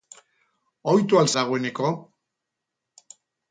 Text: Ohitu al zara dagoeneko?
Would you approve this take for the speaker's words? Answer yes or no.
no